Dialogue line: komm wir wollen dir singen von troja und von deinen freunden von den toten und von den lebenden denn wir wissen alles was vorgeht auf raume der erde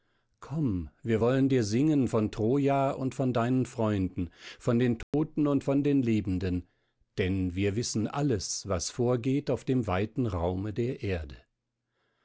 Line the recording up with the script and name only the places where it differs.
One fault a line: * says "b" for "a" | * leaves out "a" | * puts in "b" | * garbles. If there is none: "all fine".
* puts in "dem weiten"